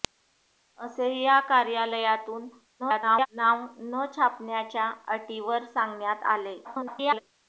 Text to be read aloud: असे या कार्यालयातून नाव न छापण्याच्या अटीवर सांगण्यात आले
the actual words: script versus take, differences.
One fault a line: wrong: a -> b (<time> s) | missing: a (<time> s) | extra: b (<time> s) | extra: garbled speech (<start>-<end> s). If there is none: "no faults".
extra: garbled speech (2.8-3.3 s)
extra: garbled speech (6.6-7.2 s)